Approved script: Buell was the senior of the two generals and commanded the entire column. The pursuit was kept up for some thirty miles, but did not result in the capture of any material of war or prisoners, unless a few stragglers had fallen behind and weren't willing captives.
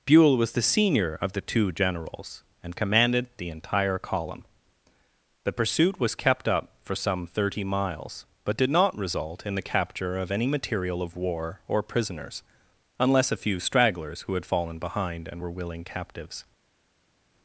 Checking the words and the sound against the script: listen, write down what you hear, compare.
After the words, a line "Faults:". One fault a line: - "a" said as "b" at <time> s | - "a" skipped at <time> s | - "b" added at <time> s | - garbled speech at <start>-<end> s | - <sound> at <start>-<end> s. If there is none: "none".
Buell was the senior of the two generals and commanded the entire column. The pursuit was kept up for some thirty miles, but did not result in the capture of any material of war or prisoners, unless a few stragglers who had fallen behind and were willing captives.
Faults:
- "who" added at 14.2 s
- "weren't" said as "were" at 15.4 s